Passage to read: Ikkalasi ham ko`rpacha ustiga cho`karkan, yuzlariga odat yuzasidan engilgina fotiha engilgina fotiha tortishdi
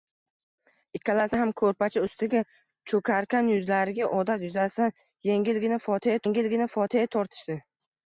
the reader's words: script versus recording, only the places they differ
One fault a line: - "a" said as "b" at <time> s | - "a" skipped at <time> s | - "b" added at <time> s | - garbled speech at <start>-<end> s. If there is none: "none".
none